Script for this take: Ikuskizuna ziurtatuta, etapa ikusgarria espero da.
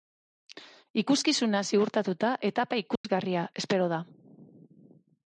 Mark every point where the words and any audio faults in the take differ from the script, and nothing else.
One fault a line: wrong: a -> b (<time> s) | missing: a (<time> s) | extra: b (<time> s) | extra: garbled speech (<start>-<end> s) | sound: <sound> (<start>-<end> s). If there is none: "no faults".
sound: dropout (3.0-3.0 s)